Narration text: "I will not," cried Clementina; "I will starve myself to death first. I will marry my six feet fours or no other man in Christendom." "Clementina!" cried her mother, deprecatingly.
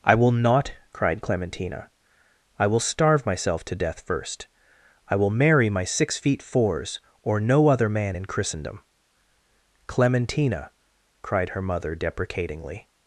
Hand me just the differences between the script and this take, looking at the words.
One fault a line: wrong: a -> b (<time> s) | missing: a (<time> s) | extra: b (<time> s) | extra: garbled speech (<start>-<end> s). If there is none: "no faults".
no faults